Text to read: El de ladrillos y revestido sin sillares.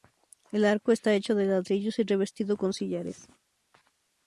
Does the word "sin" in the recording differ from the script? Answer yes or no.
yes